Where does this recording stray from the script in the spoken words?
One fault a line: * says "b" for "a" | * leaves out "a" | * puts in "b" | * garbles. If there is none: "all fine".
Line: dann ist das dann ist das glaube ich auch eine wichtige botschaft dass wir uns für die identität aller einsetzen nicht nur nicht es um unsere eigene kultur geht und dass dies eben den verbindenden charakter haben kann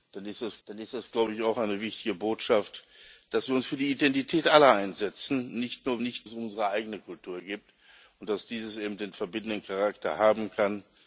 all fine